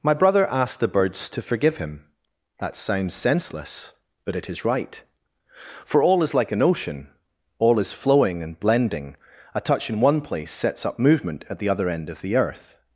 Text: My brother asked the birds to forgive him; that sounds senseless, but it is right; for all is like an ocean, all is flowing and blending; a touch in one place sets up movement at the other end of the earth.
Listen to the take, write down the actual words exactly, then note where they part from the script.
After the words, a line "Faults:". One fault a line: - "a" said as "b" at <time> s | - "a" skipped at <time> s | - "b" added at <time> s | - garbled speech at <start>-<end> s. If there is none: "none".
My brother asked the birds to forgive him; that sounds senseless, but it is right; for all is like an ocean, all is flowing and blending; a touch in one place sets up movement at the other end of the earth.
Faults:
none